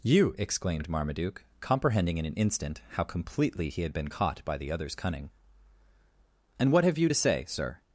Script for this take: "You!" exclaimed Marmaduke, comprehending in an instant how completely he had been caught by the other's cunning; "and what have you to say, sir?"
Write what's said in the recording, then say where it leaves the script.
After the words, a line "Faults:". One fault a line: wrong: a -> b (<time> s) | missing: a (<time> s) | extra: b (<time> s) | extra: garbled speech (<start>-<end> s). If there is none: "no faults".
"You!" exclaimed Marmaduke, comprehending in an instant how completely he had been caught by the other's cunning; "and what have you to say, sir?"
Faults:
no faults